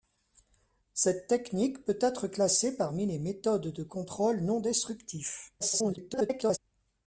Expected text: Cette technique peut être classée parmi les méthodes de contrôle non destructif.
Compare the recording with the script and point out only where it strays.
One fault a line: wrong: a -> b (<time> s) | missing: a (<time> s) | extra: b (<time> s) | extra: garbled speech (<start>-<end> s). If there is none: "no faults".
extra: garbled speech (5.6-6.6 s)